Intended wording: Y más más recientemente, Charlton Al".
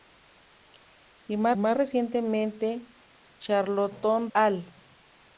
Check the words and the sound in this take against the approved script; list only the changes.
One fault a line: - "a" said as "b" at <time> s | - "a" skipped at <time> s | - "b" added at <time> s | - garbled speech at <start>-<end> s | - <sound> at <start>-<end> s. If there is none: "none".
none